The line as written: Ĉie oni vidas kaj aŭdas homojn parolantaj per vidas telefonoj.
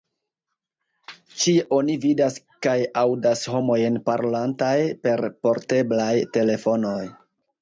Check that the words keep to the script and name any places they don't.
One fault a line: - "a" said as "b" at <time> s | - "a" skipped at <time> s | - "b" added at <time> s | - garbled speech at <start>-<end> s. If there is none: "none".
- "vidas" said as "porteblaj" at 5.5 s